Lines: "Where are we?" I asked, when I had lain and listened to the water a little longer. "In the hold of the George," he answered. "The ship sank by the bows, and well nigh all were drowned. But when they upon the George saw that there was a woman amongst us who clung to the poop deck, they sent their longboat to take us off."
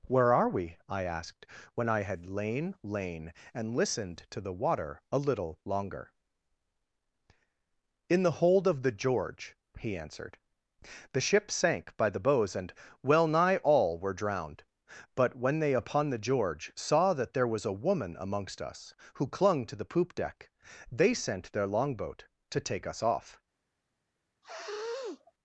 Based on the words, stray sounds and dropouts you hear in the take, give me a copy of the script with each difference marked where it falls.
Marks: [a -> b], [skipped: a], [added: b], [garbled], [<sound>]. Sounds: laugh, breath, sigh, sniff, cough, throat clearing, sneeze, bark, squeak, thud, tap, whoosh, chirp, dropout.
"Where are we?" I asked, when I had lain [added: lain] and listened to the water a little longer. "In the hold of the George," he answered. "The ship sank by the bows, and well nigh all were drowned. But when they upon the George saw that there was a woman amongst us who clung to the poop deck, they sent their longboat to take us off." [sniff]